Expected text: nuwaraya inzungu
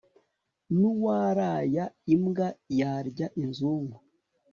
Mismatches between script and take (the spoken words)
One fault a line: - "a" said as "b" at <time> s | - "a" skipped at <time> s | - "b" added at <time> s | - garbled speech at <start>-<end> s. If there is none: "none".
- "imbwa yarya" added at 2.1 s